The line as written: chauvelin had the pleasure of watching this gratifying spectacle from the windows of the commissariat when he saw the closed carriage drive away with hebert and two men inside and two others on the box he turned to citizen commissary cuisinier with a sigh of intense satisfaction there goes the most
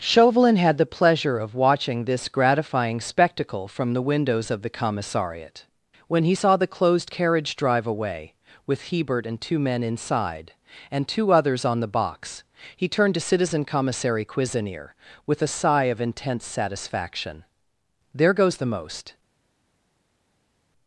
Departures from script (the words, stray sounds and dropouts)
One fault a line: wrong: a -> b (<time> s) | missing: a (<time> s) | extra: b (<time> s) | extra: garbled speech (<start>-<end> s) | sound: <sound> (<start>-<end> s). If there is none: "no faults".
no faults